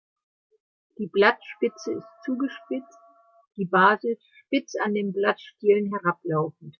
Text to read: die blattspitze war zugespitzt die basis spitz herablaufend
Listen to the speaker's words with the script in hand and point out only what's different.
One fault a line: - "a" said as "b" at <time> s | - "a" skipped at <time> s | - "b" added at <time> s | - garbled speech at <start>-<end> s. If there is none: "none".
- "war" said as "ist" at 1.9 s
- "an den blattstielen" added at 4.8 s